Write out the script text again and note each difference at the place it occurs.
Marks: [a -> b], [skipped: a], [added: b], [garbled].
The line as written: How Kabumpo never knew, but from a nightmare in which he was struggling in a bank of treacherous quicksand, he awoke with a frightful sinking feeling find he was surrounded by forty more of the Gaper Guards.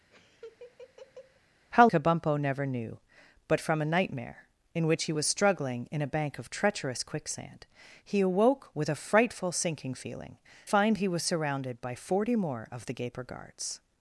How Kabumpo never knew, but from a nightmare in which he was struggling in a bank of treacherous quicksand, he awoke with a frightful sinking feeling find he was surrounded by forty more of the Gaper Guards.